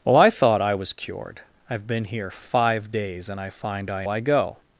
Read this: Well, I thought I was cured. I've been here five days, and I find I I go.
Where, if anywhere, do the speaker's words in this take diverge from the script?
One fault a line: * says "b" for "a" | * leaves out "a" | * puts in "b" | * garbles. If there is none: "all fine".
all fine